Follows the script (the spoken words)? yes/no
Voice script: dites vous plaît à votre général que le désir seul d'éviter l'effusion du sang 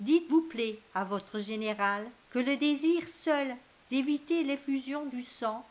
yes